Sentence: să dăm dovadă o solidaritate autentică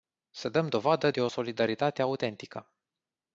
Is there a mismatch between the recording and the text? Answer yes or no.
yes